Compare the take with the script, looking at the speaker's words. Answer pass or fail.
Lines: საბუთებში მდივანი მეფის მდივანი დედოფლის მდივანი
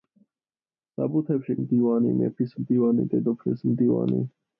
pass